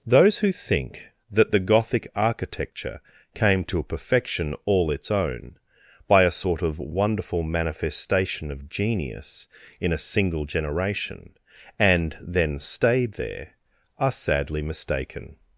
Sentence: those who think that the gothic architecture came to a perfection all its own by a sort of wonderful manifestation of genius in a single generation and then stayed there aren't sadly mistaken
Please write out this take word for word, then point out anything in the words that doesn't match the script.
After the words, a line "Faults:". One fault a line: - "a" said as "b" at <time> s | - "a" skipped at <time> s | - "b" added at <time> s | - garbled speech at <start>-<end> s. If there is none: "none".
those who think that the gothic architecture came to a perfection all its own by a sort of wonderful manifestation of genius in a single generation and then stayed there are sadly mistaken
Faults:
- "aren't" said as "are" at 14.0 s